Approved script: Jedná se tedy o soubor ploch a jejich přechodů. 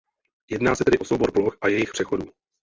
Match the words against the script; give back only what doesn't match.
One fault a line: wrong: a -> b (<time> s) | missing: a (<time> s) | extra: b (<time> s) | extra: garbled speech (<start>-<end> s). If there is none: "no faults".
no faults